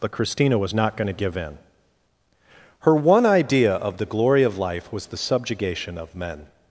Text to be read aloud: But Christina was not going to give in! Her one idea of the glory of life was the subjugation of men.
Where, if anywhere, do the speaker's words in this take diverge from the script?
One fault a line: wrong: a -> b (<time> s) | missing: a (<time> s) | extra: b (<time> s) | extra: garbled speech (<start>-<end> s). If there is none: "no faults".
no faults